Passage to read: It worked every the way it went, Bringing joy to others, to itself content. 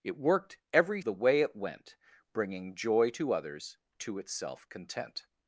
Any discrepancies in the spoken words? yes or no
no